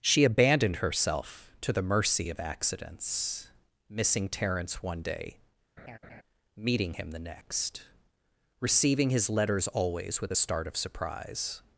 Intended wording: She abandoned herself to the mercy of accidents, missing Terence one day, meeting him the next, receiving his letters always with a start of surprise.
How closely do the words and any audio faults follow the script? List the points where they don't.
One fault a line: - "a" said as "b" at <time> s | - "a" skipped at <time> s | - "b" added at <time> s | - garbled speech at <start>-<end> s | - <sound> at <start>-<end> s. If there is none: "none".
- laugh at 5.8-6.2 s